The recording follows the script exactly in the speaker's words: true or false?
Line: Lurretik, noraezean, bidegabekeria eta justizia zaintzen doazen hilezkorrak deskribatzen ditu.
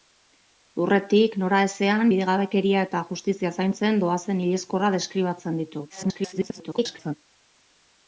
false